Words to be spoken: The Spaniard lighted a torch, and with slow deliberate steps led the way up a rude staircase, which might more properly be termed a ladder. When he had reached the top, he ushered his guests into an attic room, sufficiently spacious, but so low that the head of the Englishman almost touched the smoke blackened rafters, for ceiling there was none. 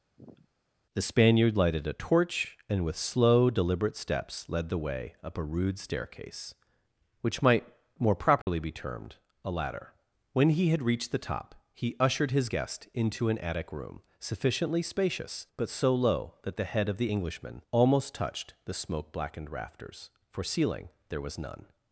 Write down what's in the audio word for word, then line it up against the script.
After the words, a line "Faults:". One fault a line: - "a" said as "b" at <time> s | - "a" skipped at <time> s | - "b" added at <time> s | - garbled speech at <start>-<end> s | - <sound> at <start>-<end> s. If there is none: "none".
The Spaniard lighted a torch, and with slow deliberate steps led the way up a rude staircase, which might more properly be termed a ladder. When he had reached the top, he ushered his guest into an attic room, sufficiently spacious, but so low that the head of the Englishman almost touched the smoke blackened rafters, for ceiling there was none.
Faults:
- sniff at 0.2-0.5 s
- dropout at 8.4-8.5 s
- "guests" said as "guest" at 12.5 s